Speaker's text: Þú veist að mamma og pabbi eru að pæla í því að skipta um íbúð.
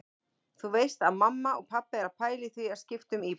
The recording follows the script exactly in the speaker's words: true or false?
true